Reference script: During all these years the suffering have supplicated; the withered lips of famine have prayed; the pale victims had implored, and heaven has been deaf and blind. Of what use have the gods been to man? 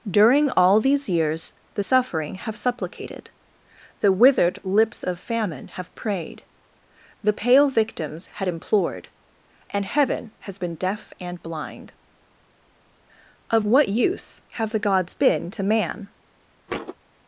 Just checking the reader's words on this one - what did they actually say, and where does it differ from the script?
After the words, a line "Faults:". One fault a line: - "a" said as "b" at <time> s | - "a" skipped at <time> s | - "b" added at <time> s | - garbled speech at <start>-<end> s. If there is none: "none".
During all these years the suffering have supplicated; the withered lips of famine have prayed; the pale victims had implored, and heaven has been deaf and blind. Of what use have the gods been to man?
Faults:
none